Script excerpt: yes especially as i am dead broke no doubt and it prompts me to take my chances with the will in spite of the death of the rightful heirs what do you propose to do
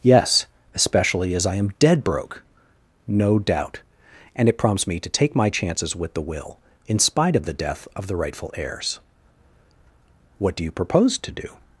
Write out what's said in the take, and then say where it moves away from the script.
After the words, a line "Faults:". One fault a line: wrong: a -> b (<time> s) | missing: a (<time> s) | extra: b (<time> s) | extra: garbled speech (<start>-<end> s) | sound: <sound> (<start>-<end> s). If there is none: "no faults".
yes especially as i am dead broke no doubt and it prompts me to take my chances with the will in spite of the death of the rightful heirs what do you propose to do
Faults:
no faults